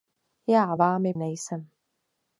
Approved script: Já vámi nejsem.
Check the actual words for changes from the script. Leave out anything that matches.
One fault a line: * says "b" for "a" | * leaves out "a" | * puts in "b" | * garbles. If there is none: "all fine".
all fine